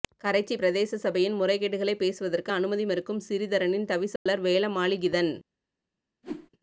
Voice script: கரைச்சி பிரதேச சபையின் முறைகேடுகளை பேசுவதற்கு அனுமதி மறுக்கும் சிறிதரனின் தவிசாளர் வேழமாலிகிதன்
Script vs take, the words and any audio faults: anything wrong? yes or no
yes